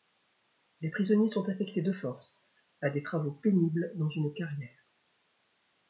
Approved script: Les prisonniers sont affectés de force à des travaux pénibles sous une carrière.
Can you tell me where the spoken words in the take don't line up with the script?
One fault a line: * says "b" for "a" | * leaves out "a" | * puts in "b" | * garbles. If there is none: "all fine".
* says "dans" for "sous"